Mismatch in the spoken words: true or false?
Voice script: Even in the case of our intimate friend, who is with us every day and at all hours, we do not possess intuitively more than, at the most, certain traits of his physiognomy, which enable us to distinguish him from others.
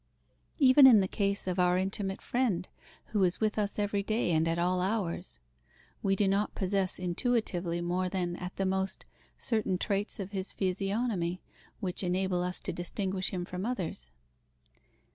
false